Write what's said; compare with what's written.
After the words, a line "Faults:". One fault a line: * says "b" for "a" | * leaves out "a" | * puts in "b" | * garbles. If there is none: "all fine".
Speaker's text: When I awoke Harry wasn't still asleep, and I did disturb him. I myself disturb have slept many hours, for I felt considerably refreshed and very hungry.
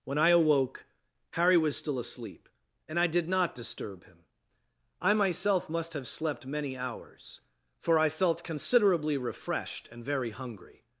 When I awoke Harry was still asleep, and I did not disturb him. I myself must have slept many hours, for I felt considerably refreshed and very hungry.
Faults:
* says "was" for "wasn't"
* puts in "not"
* says "must" for "disturb"